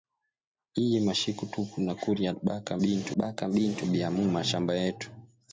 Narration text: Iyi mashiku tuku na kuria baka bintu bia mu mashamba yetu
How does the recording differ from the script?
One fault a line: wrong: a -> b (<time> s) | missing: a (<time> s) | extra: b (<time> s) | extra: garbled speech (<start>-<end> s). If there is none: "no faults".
extra: baka bintu (3.2 s)